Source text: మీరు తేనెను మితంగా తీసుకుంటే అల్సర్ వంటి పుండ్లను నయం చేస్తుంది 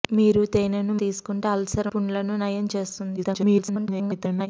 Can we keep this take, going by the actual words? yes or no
no